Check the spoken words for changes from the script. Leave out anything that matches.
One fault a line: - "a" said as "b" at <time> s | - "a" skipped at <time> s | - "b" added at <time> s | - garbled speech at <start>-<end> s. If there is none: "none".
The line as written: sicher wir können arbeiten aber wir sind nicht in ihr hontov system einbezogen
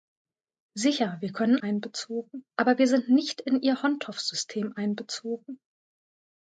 - "arbeiten" said as "einbezogen" at 1.6 s